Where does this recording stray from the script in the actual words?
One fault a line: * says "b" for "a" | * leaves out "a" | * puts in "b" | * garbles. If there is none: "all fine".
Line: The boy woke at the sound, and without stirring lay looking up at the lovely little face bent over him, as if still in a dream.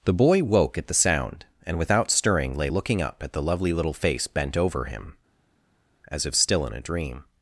all fine